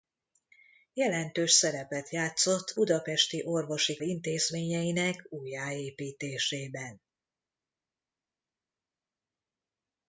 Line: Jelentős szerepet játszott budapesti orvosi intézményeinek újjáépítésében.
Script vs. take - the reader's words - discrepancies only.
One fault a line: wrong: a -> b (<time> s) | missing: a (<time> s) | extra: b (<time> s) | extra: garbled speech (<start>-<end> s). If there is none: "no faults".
no faults